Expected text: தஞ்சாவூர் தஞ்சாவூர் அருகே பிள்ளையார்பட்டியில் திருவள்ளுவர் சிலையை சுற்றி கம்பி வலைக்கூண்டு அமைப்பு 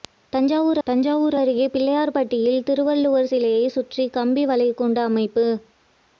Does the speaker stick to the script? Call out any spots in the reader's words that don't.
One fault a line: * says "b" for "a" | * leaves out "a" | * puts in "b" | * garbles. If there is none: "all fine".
all fine